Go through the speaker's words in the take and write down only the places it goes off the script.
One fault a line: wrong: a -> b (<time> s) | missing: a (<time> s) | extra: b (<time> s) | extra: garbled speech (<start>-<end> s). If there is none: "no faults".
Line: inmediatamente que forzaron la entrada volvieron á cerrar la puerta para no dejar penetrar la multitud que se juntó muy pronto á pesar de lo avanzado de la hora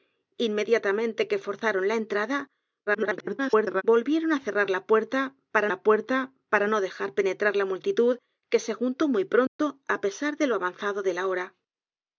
extra: garbled speech (2.9-3.8 s)
extra: la puerta para (5.7 s)